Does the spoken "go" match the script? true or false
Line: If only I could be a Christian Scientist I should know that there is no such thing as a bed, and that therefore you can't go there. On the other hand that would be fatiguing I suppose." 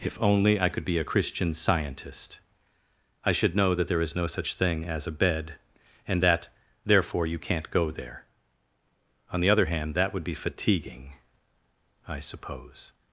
true